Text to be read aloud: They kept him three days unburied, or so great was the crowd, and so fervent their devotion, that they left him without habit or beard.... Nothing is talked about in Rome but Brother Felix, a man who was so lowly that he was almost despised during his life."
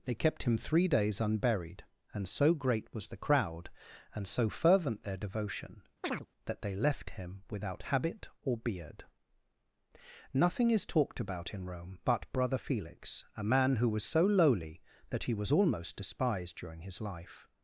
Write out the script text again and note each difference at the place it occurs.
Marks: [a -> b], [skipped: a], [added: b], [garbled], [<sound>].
They kept him three days unburied, [or -> and] so great was the crowd, and so fervent their devotion, [chirp] that they left him without habit or beard.... Nothing is talked about in Rome but Brother Felix, a man who was so lowly that he was almost despised during his life."